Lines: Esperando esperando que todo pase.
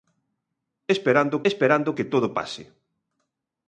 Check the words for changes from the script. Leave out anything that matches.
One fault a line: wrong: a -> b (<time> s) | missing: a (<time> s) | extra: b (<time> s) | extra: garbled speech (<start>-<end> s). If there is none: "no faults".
no faults